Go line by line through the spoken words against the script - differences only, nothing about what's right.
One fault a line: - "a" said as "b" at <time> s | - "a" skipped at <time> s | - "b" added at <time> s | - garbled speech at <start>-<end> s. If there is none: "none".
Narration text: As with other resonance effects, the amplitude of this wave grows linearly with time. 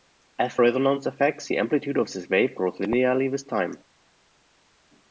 - "with other" skipped at 0.6 s